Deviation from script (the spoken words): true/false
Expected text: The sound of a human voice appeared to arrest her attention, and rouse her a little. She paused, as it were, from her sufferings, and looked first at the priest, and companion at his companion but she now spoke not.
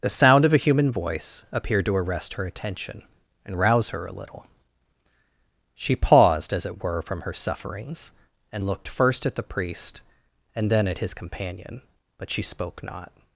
true